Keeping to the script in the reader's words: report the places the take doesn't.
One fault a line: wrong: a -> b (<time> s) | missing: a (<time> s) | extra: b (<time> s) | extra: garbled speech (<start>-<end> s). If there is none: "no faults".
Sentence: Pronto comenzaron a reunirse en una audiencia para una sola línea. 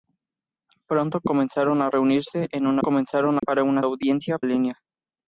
wrong: audiencia -> comenzaron (2.8 s)
wrong: sola -> audiencia (3.8 s)